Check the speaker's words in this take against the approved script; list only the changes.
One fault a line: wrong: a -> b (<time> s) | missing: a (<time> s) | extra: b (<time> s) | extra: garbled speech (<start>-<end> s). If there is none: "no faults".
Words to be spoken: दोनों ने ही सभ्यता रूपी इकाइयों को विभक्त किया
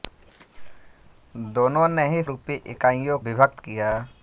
missing: सभ्यता (2.2 s)
missing: को (3.2 s)